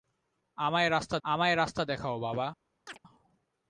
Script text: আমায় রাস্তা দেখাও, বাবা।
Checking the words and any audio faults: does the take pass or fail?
fail